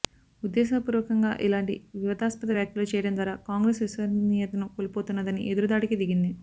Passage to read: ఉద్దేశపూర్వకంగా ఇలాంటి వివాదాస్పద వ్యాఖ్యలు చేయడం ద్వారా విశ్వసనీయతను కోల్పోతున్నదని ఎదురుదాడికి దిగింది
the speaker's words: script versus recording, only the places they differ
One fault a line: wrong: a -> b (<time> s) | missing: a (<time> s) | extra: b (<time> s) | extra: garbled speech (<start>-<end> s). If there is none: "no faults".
extra: కాంగ్రెస్ (3.5 s)